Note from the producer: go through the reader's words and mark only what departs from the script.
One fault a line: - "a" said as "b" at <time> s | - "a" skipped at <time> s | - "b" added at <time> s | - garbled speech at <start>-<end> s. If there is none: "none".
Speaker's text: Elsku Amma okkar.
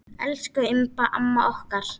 - "Imba" added at 0.7 s